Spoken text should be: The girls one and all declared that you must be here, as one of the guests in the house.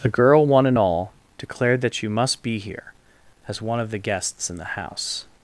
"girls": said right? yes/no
no